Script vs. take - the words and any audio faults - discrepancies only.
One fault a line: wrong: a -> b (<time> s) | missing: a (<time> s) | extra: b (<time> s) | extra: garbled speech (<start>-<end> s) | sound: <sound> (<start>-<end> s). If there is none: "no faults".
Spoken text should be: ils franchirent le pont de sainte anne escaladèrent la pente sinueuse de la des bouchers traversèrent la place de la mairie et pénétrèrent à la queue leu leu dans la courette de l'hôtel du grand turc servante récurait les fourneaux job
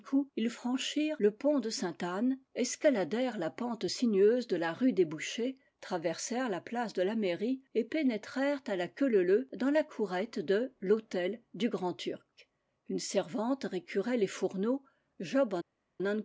extra: rue (4.7 s)
extra: une (12.9 s)